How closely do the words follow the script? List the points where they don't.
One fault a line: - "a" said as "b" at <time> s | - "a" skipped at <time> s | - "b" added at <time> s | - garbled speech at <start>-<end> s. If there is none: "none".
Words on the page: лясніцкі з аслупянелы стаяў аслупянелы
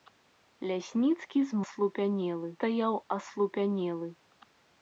none